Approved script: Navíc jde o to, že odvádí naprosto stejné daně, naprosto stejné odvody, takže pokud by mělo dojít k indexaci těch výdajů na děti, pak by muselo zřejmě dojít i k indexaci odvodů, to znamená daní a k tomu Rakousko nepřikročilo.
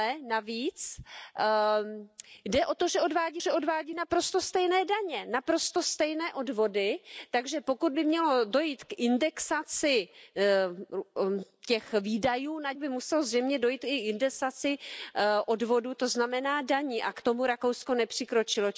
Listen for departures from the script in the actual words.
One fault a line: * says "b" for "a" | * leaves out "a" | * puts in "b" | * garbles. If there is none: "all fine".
* puts in "že odvádí"
* leaves out "děti pak"